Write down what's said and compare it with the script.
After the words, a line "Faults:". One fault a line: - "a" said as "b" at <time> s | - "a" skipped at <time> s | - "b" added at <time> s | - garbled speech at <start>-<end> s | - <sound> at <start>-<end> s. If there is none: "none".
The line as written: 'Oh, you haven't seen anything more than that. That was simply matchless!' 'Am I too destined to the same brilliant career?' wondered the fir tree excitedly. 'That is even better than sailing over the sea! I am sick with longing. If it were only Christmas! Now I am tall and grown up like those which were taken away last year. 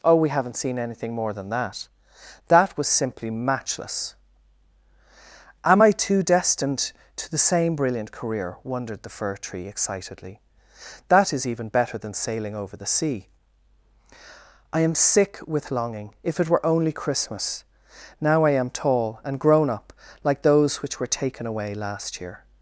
'Oh, we haven't seen anything more than that. That was simply matchless!' 'Am I too destined to the same brilliant career?' wondered the fir tree excitedly. 'That is even better than sailing over the sea! I am sick with longing. If it were only Christmas! Now I am tall and grown up like those which were taken away last year.
Faults:
- "you" said as "we" at 0.1 s